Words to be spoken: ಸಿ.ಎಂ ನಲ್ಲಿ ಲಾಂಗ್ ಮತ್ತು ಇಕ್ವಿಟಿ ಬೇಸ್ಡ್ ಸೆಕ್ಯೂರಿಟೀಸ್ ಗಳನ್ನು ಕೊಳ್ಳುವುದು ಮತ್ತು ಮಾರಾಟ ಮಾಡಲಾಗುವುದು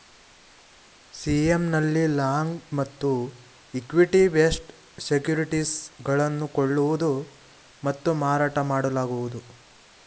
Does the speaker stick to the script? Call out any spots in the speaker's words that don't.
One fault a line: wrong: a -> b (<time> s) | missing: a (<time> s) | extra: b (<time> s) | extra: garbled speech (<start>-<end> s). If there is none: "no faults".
no faults